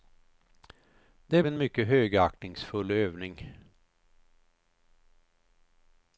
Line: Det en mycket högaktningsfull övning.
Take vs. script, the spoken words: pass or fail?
pass